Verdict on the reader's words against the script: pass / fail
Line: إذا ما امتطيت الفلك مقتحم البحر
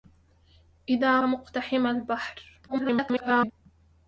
fail